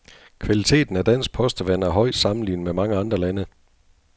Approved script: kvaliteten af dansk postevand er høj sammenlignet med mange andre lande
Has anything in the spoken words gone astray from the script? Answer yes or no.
no